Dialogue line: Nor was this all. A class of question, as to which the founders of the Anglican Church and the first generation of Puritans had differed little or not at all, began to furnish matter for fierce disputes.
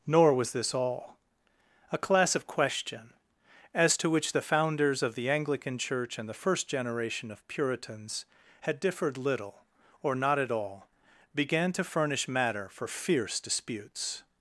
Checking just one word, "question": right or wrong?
right